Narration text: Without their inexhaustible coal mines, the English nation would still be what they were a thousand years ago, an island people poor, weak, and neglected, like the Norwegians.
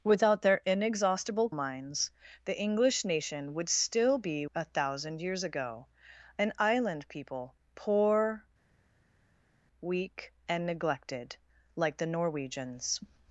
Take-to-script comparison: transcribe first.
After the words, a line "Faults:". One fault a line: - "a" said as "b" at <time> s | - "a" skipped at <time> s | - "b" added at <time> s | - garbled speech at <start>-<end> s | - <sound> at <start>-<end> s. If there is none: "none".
Without their inexhaustible mines, the English nation would still be a thousand years ago, an island people poor, weak, and neglected, like the Norwegians.
Faults:
- "coal" skipped at 1.5 s
- "what they were" skipped at 4.5 s